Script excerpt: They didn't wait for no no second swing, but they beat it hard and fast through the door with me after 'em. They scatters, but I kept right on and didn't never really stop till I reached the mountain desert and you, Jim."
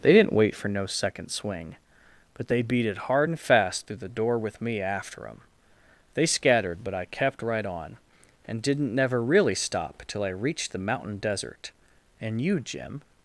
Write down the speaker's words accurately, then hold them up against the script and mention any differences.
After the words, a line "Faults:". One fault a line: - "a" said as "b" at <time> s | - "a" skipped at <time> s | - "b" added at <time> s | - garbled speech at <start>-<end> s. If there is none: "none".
They didn't wait for no second swing, but they beat it hard and fast through the door with me after 'em. They scattered, but I kept right on and didn't never really stop till I reached the mountain desert and you, Jim."
Faults:
- "no" skipped at 0.8 s
- "scatters" said as "scattered" at 6.3 s